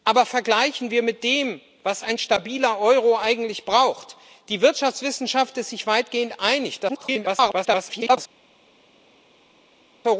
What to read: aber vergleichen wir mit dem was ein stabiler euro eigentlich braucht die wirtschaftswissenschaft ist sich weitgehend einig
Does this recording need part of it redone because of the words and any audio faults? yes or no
yes